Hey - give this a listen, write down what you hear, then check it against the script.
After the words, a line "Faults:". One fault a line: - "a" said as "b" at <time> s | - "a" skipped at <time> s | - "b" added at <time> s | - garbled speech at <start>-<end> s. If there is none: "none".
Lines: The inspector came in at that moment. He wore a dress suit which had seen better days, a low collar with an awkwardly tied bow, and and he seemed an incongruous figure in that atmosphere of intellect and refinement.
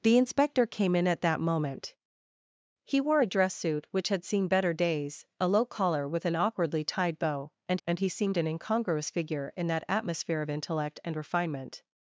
The inspector came in at that moment. He wore a dress suit which had seen better days, a low collar with an awkwardly tied bow, and and he seemed an incongruous figure in that atmosphere of intellect and refinement.
Faults:
none